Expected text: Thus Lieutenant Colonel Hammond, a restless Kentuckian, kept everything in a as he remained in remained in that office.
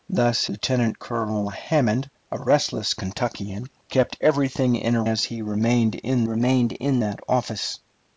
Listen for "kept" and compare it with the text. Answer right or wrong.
right